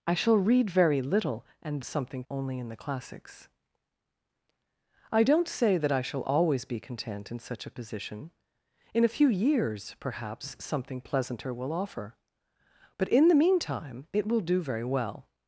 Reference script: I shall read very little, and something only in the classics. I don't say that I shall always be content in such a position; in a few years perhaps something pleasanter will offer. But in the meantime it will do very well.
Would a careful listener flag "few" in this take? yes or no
no